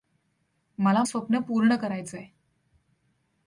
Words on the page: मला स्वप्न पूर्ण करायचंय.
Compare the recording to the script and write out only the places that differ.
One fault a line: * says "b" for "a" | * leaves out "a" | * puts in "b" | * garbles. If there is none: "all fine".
all fine